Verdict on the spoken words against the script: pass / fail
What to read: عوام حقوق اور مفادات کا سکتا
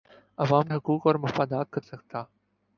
pass